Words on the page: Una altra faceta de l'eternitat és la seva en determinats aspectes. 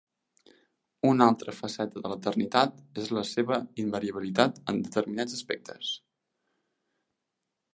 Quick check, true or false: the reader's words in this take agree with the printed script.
false